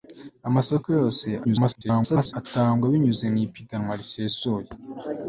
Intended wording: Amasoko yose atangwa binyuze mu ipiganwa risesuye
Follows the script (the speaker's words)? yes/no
no